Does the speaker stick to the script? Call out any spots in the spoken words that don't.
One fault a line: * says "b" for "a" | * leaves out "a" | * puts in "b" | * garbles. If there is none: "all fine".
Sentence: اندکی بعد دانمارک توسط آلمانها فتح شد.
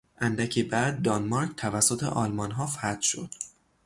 all fine